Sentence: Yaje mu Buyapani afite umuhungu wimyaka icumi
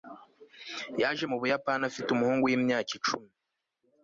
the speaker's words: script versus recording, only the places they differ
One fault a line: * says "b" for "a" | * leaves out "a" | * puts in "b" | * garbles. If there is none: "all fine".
all fine